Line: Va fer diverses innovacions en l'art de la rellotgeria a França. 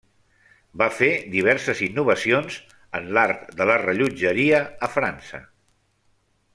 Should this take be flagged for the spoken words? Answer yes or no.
no